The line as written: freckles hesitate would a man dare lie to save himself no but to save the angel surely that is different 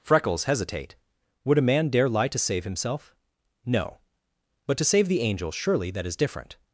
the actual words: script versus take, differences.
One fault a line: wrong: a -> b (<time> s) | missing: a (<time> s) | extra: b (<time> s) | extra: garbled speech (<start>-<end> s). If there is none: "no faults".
no faults